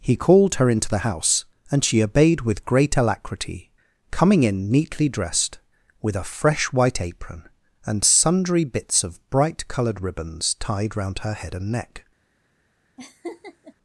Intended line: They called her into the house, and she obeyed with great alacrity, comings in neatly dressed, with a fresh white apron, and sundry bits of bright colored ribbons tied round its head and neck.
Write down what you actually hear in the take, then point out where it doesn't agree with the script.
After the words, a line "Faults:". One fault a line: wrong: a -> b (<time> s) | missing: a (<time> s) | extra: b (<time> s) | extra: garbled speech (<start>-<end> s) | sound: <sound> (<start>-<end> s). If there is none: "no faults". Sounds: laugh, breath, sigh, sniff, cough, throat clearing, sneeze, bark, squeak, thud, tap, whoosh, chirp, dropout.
He called her into the house, and she obeyed with great alacrity, coming in neatly dressed, with a fresh white apron, and sundry bits of bright colored ribbons tied round her head and neck.
Faults:
wrong: They -> He (0.0 s)
wrong: comings -> coming (4.1 s)
wrong: its -> her (11.2 s)
sound: laugh (13.0-13.7 s)